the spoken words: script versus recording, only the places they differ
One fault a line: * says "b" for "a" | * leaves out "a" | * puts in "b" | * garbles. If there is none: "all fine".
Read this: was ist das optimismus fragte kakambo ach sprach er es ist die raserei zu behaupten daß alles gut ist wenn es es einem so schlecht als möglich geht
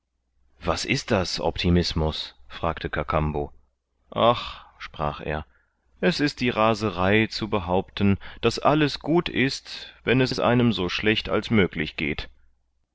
all fine